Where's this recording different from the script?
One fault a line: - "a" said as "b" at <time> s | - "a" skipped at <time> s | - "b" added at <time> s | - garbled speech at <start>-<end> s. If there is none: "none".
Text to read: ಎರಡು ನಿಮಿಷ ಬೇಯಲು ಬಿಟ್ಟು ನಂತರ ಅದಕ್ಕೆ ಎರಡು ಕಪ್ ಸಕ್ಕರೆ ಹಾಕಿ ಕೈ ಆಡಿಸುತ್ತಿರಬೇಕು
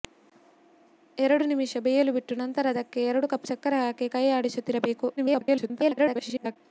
- garbled speech at 5.2-6.6 s